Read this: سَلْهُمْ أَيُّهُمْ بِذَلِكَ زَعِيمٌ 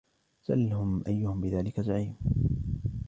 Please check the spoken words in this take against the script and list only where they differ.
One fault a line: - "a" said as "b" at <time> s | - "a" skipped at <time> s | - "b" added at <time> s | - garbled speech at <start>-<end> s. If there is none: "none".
none